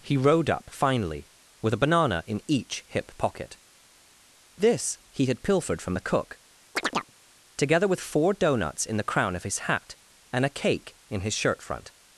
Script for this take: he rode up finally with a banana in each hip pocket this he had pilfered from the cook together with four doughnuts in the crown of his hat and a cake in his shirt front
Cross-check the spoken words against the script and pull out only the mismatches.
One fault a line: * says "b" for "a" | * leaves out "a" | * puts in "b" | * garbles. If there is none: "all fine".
all fine